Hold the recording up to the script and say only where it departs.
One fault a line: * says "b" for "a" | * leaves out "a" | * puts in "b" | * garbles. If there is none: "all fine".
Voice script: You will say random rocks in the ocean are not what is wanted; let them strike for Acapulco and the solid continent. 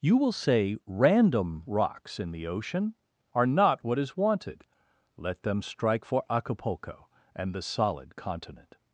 all fine